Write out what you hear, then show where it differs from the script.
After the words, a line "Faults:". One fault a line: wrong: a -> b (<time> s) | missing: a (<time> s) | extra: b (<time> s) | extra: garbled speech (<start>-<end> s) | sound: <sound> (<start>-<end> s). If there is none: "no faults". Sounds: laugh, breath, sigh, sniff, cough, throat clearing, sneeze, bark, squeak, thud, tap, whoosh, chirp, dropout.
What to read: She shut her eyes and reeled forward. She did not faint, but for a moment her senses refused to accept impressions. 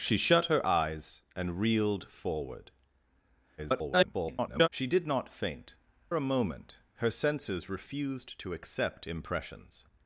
She shut her eyes and reeled forward. [garbled] She did not faint, a moment her senses refused to accept impressions.
Faults:
extra: garbled speech (3.6-4.7 s)
missing: but for (5.7 s)